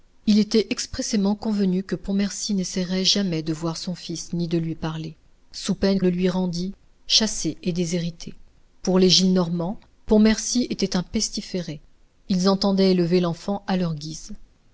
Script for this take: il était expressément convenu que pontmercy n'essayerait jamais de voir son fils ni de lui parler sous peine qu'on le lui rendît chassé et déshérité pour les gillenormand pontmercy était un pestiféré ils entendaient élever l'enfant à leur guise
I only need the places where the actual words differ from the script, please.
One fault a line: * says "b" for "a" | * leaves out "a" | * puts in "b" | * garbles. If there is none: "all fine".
* leaves out "qu'on"